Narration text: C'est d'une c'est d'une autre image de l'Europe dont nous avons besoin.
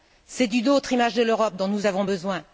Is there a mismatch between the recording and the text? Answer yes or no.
yes